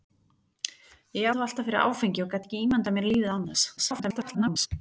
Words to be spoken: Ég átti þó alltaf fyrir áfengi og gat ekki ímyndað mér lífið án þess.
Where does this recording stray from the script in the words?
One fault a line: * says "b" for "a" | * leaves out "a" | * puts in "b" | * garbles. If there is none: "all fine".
* leaves out "átti"
* garbles